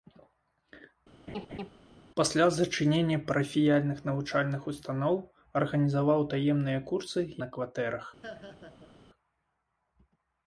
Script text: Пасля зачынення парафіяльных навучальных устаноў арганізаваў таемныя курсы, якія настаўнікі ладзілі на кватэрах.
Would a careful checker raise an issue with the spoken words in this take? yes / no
yes